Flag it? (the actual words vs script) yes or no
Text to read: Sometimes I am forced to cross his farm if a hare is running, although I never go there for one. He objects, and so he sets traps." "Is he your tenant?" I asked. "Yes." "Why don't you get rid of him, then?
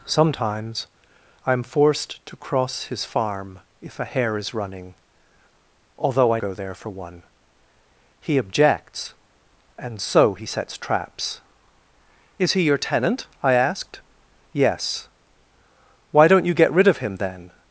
yes